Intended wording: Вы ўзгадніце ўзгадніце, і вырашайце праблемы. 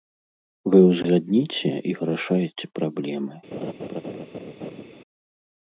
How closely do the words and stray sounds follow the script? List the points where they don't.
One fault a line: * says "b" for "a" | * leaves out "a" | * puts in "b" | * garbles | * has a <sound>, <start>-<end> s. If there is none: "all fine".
* leaves out "ўзгадніце"
* has a laugh, 3.5-4.8 s